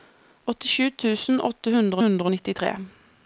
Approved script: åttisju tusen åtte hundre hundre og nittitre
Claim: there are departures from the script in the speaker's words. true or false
false